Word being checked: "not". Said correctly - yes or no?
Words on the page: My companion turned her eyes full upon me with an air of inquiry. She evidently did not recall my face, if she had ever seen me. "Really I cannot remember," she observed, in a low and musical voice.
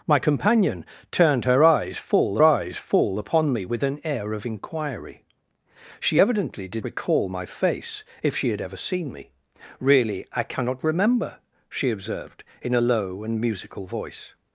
no